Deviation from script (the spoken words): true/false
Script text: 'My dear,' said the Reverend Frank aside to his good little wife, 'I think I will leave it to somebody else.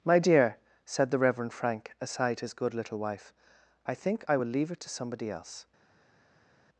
true